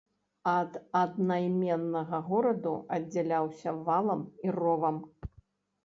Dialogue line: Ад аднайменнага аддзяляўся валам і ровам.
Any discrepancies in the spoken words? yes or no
yes